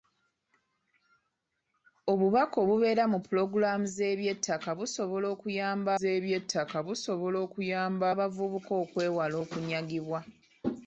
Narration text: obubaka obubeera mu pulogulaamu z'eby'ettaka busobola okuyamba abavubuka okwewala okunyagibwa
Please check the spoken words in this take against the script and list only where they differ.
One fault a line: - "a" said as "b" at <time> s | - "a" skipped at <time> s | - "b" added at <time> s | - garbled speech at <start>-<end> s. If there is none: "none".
- "z'eby'ettaka busobola okuyamba" added at 6.0 s